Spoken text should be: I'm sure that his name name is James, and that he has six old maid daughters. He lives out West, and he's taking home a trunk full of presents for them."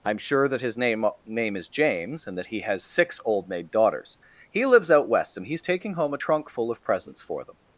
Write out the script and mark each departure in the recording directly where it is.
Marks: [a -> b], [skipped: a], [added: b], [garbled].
I'm sure that his name name is James, and that he has six old maid daughters. He lives out West, and he's taking home a trunk full of presents for them."